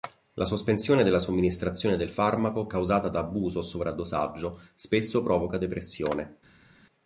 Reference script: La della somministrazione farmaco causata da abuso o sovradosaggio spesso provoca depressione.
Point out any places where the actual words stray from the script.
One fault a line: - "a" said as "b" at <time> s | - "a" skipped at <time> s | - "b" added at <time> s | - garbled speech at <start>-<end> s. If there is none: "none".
- "sospensione" added at 0.5 s
- "del" added at 1.9 s